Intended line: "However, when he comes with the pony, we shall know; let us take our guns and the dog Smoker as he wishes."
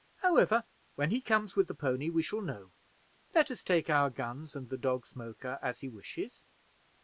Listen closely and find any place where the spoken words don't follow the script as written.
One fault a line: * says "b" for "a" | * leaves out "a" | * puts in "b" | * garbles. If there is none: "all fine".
all fine